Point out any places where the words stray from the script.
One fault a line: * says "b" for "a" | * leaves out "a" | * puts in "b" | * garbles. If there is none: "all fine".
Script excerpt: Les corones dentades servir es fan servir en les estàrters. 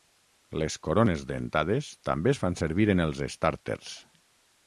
* says "també" for "servir"
* says "els" for "les"